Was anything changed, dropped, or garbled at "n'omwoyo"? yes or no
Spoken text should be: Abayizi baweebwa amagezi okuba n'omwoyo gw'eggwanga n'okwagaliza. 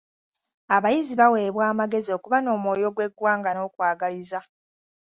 no